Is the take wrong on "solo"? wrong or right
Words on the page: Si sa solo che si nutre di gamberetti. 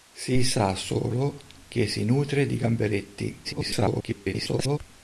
right